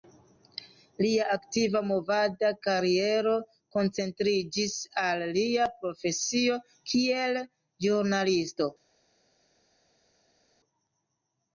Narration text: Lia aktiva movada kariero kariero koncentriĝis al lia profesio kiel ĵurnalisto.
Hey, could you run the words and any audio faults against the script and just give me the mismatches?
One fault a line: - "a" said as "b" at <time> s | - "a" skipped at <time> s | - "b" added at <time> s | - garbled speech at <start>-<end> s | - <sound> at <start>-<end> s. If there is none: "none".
- "kariero" skipped at 3.3 s